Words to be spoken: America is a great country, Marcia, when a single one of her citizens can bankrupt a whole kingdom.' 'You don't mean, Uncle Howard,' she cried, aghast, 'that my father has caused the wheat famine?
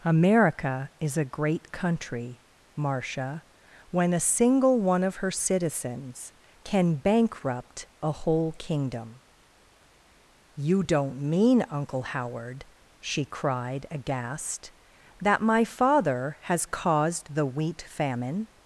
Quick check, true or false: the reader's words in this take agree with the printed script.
true